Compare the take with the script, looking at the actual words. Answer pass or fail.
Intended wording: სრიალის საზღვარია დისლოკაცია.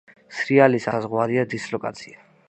pass